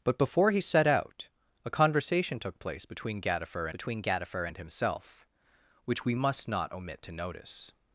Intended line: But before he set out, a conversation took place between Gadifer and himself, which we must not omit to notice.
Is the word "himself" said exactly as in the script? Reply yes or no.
yes